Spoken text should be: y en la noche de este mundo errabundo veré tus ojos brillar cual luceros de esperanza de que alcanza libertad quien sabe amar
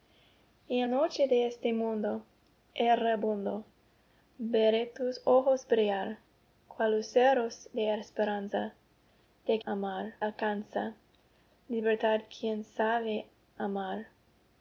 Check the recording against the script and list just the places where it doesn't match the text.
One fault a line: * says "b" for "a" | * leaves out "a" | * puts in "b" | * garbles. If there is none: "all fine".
* leaves out "la"
* says "amar" for "que"